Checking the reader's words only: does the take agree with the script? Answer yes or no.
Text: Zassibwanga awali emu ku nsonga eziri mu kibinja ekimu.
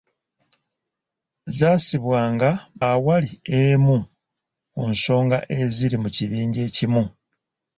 yes